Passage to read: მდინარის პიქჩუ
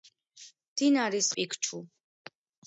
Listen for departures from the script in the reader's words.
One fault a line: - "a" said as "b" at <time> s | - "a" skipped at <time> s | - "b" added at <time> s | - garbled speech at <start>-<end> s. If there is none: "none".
none